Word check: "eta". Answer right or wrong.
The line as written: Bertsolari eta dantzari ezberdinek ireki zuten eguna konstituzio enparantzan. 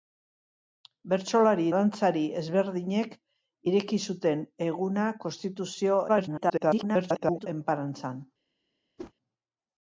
wrong